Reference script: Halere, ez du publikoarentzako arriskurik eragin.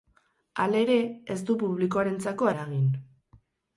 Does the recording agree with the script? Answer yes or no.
no